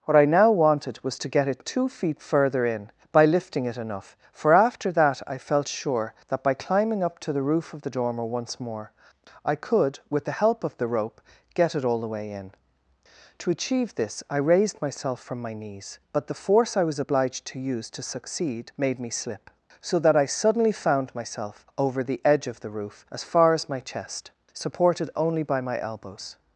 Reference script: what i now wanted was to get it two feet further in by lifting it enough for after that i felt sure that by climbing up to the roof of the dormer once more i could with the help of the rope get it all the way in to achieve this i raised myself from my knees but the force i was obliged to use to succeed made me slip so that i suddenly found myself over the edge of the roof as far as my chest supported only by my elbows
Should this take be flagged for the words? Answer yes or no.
no